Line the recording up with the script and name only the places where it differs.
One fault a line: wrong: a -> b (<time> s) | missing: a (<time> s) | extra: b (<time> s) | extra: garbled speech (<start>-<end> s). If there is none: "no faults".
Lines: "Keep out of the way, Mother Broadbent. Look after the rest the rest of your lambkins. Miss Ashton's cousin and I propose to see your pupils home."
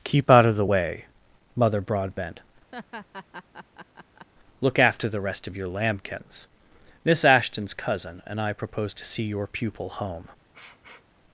missing: the rest (5.5 s)
wrong: pupils -> pupil (9.5 s)